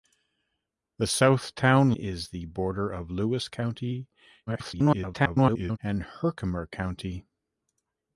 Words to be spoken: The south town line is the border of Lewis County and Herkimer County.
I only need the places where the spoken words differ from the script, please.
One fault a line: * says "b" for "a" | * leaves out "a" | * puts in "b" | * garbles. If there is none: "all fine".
* leaves out "line"
* garbles